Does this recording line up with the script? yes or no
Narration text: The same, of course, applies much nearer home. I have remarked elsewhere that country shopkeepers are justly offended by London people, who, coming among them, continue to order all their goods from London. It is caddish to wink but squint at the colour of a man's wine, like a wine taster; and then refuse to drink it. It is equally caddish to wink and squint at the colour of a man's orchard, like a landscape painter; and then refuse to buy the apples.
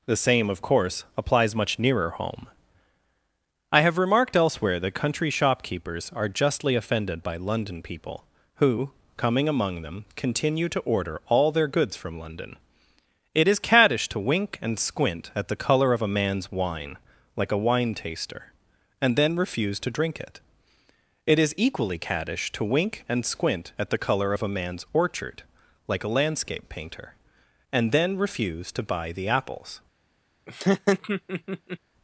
no